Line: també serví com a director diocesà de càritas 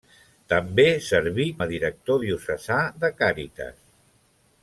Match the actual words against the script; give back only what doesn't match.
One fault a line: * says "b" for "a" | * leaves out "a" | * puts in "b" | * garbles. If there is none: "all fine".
* leaves out "com"